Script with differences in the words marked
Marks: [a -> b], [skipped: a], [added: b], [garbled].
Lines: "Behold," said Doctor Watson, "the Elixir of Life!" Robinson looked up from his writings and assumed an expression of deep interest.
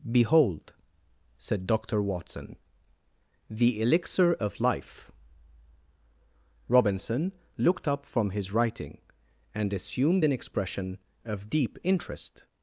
"Behold," said Doctor Watson, "the Elixir of Life!" Robinson looked up from his [writings -> writing] and assumed an expression of deep interest.